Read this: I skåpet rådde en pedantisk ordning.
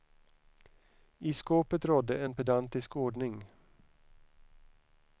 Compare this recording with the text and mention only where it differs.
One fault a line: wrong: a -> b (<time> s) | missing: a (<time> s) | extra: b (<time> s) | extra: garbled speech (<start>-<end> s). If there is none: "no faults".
no faults